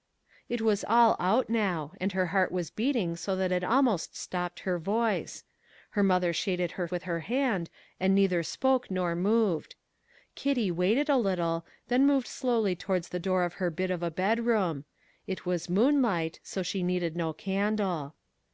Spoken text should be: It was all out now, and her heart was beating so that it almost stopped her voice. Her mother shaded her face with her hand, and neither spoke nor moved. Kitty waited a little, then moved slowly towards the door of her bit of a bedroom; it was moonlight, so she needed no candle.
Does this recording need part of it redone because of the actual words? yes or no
yes